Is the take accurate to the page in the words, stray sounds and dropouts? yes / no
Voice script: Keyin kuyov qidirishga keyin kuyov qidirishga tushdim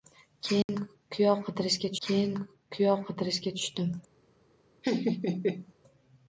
no